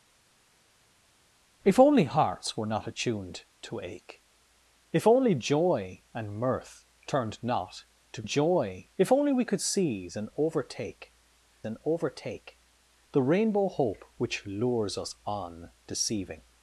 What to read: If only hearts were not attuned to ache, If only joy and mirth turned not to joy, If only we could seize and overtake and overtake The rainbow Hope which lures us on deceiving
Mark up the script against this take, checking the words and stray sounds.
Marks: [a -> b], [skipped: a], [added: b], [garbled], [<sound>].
If only hearts were not attuned to ache, If only joy and mirth turned not to joy, If only we could seize and overtake and overtake The rainbow Hope which lures us on deceiving